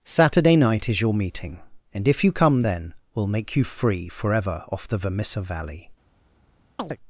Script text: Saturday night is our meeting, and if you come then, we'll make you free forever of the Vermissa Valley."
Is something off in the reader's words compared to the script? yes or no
yes